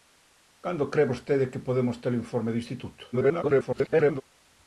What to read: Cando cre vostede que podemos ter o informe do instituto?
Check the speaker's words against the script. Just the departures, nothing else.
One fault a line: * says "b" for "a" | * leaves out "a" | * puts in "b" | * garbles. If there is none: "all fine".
* garbles